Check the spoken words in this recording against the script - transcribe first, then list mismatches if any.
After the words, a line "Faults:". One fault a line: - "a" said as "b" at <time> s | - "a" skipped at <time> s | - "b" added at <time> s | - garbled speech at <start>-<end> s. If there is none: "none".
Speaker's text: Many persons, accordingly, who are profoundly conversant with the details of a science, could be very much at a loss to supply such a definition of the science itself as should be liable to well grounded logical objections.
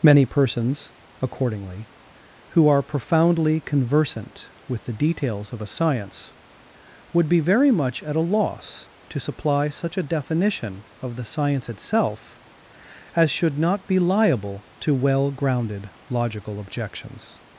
Many persons, accordingly, who are profoundly conversant with the details of a science, would be very much at a loss to supply such a definition of the science itself as should not be liable to well grounded logical objections.
Faults:
- "could" said as "would" at 7.1 s
- "not" added at 13.6 s